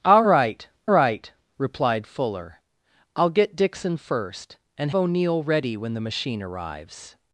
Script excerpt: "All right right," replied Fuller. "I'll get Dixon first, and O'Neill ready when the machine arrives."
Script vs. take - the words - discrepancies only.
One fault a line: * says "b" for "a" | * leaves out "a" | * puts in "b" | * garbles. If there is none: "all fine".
all fine